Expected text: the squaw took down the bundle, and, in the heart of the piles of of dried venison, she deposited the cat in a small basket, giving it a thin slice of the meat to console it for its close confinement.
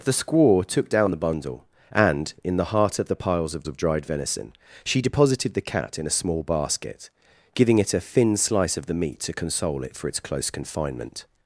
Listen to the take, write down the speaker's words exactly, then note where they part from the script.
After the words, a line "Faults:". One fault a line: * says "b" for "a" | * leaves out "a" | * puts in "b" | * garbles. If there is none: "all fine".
the squaw took down the bundle, and, in the heart of the piles of of dried venison, she deposited the cat in a small basket, giving it a thin slice of the meat to console it for its close confinement.
Faults:
all fine